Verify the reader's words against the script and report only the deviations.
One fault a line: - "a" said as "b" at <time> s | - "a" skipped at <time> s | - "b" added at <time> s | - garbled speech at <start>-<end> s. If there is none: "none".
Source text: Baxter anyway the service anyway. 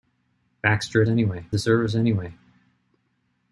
none